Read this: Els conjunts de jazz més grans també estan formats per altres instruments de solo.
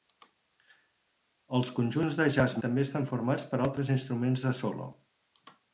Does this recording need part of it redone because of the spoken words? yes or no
yes